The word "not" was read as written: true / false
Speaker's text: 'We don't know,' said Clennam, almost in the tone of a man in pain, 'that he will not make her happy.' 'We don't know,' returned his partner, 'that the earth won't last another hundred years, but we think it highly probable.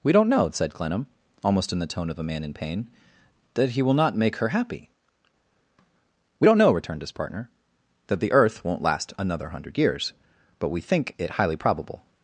true